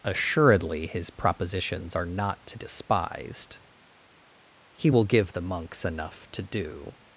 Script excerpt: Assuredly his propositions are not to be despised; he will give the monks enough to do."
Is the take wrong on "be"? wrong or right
wrong